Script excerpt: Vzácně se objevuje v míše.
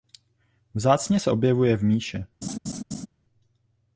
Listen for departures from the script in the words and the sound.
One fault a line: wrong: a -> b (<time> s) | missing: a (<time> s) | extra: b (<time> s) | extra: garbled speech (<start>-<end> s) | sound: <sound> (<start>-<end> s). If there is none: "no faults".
sound: laugh (2.4-3.1 s)